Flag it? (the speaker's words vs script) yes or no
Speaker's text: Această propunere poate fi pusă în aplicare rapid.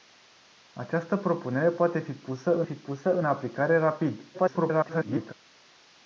yes